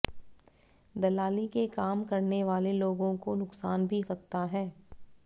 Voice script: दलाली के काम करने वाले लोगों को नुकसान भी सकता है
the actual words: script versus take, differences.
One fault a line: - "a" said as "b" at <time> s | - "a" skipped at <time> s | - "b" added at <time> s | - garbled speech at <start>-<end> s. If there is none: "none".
none